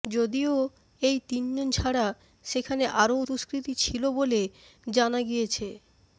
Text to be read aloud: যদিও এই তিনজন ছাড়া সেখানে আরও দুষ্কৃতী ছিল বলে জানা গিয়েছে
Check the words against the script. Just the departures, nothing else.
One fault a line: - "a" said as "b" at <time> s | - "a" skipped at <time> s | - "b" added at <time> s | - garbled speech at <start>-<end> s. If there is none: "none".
none